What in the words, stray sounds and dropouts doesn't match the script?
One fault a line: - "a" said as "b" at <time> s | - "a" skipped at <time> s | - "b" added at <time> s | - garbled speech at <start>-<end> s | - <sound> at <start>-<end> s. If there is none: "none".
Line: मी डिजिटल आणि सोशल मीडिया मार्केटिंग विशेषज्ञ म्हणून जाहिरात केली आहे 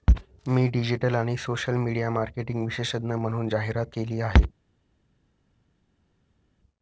none